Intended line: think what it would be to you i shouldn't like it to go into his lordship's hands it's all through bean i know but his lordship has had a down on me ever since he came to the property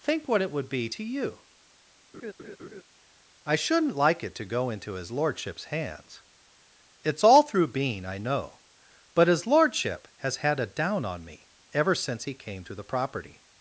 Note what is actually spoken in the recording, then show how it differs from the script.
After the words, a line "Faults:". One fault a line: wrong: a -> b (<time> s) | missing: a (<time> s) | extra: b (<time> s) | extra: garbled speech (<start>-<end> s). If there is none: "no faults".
think what it would be to you i shouldn't like it to go into his lordship's hands it's all through bean i know but his lordship has had a down on me ever since he came to the property
Faults:
no faults